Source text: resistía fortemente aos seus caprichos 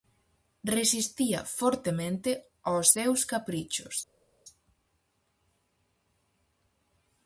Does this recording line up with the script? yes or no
yes